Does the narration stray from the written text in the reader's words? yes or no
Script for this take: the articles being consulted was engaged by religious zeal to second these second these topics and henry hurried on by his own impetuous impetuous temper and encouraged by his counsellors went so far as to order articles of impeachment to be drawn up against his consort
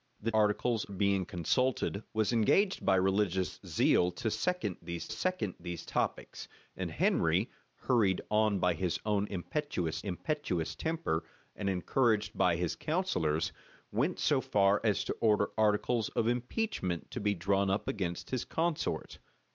no